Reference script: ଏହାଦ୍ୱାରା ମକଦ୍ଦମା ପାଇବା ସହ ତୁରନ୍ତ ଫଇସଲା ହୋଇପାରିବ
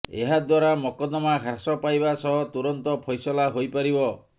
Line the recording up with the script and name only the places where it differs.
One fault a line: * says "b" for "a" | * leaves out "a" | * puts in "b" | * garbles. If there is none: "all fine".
* puts in "ହ୍ରାସ"